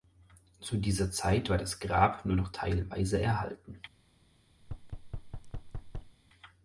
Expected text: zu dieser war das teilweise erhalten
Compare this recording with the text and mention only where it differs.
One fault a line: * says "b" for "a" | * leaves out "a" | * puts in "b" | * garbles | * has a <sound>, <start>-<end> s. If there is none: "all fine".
* puts in "zeit"
* puts in "grab nur noch"
* has a thud, 4.6-6.2 s